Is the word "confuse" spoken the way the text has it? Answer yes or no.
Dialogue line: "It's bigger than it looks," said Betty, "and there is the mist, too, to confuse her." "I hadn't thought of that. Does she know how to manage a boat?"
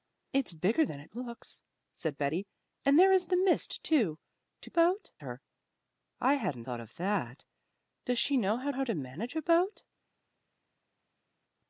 no